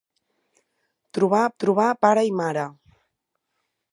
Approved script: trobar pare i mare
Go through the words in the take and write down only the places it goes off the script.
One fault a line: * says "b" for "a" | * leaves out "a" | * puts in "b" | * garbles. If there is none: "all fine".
* puts in "trobar"